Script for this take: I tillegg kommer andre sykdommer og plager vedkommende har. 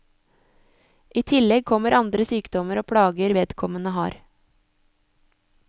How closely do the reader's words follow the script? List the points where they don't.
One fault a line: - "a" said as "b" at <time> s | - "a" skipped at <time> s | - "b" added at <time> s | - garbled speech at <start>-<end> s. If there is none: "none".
none